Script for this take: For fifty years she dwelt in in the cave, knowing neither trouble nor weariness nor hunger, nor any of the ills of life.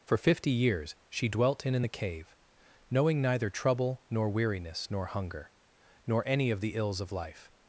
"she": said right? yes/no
yes